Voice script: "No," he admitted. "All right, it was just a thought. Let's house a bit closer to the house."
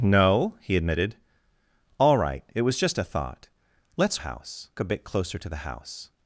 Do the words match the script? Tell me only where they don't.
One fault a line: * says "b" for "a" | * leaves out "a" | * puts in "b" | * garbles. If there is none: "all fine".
all fine